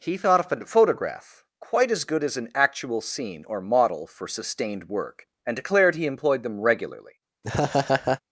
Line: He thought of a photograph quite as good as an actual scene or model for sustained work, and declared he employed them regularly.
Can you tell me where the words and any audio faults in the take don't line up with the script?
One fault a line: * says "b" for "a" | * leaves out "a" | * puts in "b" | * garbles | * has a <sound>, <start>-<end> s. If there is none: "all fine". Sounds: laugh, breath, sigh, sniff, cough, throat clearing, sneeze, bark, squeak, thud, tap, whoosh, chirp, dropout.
* has a laugh, 7.4-8.2 s